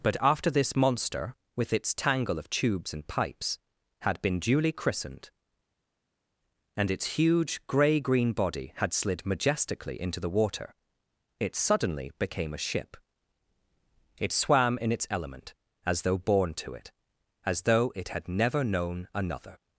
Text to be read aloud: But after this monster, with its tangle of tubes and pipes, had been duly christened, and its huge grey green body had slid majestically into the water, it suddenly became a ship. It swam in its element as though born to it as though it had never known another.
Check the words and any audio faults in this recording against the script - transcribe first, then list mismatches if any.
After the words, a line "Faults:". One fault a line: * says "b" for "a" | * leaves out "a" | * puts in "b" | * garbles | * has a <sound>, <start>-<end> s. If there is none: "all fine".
But after this monster, with its tangle of tubes and pipes, had been duly christened, and its huge grey green body had slid majestically into the water, it suddenly became a ship. It swam in its element as though born to it as though it had never known another.
Faults:
all fine